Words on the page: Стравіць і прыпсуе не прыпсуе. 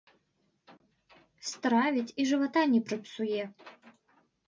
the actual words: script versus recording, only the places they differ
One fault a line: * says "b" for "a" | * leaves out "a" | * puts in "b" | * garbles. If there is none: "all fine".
* says "жывата" for "прыпсуе"